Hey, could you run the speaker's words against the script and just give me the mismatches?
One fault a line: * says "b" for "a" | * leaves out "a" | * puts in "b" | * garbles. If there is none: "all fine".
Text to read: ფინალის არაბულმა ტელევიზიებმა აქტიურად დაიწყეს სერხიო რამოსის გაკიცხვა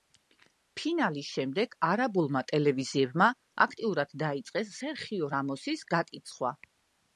* puts in "შემდეგ"